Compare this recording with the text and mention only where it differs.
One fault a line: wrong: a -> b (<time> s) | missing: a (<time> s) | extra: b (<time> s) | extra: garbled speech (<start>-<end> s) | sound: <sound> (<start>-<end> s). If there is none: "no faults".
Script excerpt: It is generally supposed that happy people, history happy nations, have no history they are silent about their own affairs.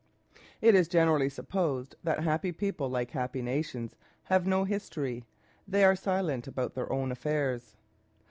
wrong: history -> like (2.9 s)